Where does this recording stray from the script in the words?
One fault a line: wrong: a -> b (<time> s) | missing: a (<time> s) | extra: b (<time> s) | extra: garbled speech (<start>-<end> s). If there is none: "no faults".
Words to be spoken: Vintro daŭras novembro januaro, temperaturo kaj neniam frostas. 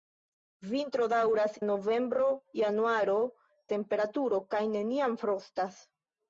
no faults